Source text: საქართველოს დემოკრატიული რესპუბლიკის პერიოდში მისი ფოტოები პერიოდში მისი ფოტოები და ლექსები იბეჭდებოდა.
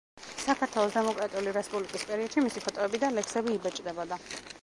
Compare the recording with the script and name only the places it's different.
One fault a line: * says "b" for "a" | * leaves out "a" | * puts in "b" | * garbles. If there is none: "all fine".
* leaves out "პერიოდში მისი ფოტოები"